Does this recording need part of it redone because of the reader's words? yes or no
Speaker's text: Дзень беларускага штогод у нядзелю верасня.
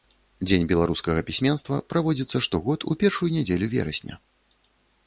yes